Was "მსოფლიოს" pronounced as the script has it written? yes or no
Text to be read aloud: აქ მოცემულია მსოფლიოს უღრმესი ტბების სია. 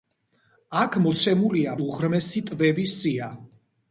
no